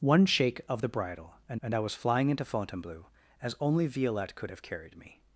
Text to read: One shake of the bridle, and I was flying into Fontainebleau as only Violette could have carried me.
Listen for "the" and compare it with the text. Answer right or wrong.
right